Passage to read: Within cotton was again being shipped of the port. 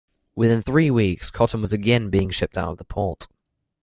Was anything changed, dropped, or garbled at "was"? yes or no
no